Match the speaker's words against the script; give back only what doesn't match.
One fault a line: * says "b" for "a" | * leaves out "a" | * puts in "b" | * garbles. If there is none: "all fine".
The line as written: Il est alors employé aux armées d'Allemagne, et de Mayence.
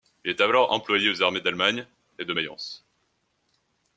all fine